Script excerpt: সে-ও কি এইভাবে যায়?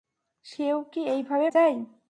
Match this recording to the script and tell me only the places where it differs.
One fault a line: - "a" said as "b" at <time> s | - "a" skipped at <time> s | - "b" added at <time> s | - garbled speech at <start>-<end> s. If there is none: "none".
none